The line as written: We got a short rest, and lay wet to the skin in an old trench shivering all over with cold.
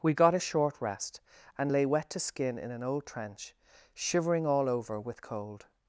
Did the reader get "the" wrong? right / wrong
wrong